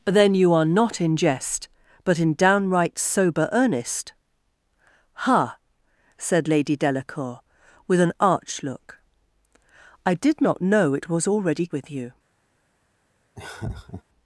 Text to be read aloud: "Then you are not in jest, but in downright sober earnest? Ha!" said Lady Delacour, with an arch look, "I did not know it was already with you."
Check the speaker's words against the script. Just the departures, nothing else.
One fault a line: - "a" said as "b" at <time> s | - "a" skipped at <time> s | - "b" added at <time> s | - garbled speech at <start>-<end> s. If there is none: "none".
none